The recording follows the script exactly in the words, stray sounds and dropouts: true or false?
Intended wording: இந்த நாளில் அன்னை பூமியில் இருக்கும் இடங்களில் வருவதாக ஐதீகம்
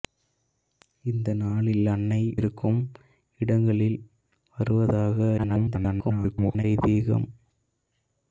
false